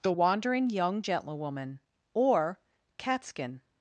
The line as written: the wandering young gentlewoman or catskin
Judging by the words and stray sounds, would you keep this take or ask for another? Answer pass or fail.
pass